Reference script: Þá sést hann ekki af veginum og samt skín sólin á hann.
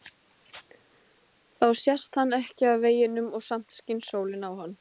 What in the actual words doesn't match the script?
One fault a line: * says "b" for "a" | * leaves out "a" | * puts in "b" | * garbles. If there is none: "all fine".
all fine